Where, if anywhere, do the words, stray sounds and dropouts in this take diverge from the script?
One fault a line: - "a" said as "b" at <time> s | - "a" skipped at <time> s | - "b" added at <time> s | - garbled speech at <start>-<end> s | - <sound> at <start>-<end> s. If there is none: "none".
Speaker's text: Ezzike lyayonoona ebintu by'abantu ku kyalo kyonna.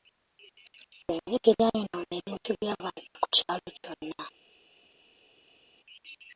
none